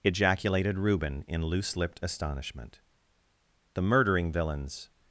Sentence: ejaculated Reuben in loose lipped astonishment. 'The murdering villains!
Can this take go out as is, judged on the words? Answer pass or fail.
pass